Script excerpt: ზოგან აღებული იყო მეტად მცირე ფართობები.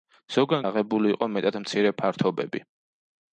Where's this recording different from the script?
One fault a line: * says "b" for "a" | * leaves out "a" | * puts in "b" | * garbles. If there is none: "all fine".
all fine